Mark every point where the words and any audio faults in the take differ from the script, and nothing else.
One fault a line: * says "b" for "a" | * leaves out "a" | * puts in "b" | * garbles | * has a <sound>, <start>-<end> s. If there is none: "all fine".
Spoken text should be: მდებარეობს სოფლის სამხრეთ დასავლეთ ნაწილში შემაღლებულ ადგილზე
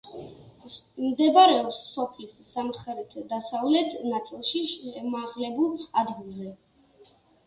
all fine